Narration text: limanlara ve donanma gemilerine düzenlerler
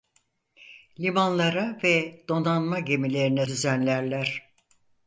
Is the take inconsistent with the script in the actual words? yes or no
no